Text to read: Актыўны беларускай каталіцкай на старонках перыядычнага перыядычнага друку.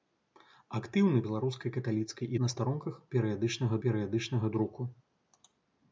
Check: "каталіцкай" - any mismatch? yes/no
no